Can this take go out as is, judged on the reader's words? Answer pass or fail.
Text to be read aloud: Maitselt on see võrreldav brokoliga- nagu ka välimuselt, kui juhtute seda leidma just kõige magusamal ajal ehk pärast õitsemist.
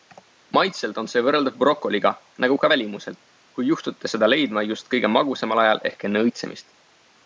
fail